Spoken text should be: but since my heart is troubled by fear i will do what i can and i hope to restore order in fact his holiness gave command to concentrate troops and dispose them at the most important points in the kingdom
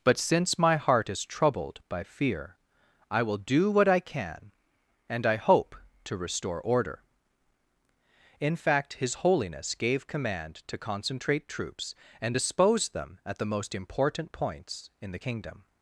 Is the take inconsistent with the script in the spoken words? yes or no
no